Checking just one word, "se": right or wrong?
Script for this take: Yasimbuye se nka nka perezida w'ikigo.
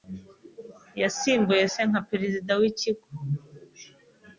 right